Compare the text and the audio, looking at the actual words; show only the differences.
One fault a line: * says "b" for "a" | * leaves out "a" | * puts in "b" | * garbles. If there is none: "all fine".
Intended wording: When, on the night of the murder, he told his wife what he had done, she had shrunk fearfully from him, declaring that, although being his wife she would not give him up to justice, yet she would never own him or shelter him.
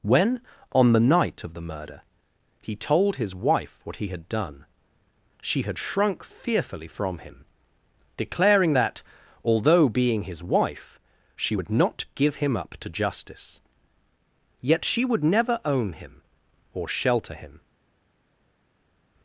all fine